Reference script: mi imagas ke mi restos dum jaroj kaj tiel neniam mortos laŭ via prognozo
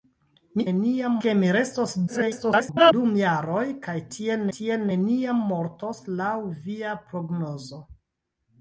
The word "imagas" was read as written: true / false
false